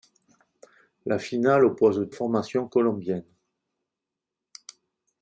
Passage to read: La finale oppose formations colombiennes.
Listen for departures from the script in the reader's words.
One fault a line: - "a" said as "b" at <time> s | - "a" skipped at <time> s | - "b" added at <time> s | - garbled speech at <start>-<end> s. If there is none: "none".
none